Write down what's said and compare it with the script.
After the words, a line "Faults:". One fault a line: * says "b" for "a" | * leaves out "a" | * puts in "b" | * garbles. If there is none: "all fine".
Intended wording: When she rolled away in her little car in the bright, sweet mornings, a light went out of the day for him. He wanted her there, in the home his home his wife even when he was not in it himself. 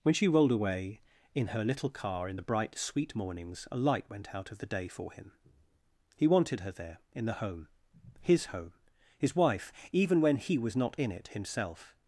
When she rolled away in her little car in the bright, sweet mornings, a light went out of the day for him. He wanted her there, in the home his home his wife even when he was not in it himself.
Faults:
all fine